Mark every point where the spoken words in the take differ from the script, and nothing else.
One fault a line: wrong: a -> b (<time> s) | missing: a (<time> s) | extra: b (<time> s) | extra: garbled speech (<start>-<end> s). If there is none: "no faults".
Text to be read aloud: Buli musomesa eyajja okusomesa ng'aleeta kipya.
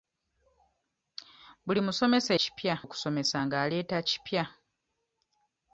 wrong: eyajja -> kipya (2.4 s)